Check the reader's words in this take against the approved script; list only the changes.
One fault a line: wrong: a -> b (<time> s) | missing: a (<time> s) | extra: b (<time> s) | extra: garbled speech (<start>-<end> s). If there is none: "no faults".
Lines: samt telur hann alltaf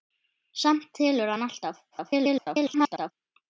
extra: garbled speech (1.9-3.1 s)